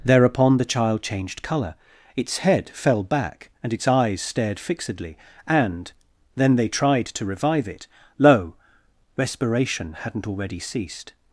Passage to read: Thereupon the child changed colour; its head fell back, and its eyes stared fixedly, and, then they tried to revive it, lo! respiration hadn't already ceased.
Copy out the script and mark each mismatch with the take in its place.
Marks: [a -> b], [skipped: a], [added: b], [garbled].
Thereupon the child changed colour; its head fell back, and its eyes stared fixedly, and, then they tried to revive it, lo! respiration hadn't already ceased.